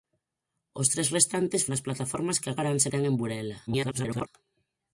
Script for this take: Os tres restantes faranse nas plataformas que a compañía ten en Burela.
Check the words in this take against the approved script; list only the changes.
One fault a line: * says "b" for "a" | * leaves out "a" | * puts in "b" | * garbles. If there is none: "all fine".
* leaves out "faranse"
* says "faranse" for "compañía"
* garbles